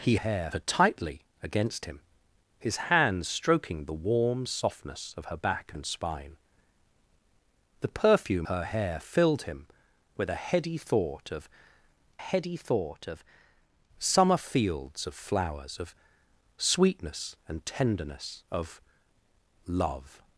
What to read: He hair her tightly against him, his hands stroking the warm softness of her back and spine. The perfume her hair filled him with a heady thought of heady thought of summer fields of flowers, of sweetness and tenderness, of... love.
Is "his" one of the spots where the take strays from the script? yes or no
no